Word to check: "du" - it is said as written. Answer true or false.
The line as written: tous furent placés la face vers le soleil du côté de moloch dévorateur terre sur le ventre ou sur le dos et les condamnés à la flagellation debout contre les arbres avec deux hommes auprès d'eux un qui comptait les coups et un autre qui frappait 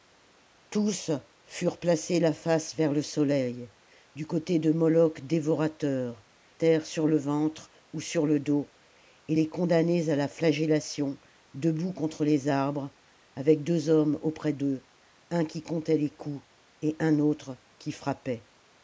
true